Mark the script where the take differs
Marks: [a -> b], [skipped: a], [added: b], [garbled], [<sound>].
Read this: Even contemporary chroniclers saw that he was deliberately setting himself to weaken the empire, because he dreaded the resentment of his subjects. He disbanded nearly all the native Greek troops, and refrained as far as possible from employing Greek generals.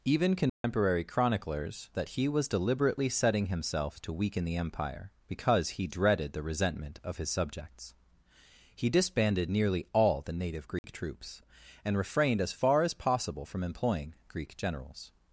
Even contemporary [dropout] chroniclers [skipped: saw] that he was deliberately setting himself to weaken the empire, because he dreaded the resentment of his subjects. He disbanded nearly all the native Greek [dropout] troops, and refrained as far as possible from employing Greek generals.